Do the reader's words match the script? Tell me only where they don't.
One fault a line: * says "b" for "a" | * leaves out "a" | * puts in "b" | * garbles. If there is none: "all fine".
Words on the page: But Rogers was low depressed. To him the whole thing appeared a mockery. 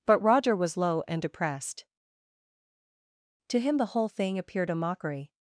* says "Roger" for "Rogers"
* puts in "and"